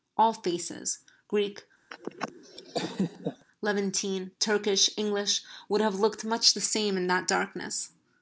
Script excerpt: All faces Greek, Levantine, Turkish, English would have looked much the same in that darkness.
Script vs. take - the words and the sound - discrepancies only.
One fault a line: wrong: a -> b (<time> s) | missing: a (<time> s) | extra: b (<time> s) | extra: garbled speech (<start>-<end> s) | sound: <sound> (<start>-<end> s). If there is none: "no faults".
sound: laugh (1.9-3.5 s)